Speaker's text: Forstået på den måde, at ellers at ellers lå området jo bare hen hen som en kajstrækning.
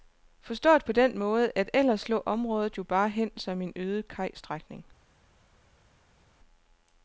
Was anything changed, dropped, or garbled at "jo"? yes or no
no